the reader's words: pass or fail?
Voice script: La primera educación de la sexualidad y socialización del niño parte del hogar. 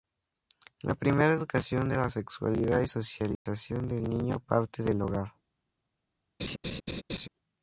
pass